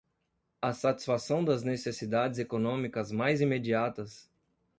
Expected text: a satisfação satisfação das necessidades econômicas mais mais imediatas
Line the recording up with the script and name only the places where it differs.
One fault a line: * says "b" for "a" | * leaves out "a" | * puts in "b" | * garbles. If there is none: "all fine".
* leaves out "satisfação"
* leaves out "mais"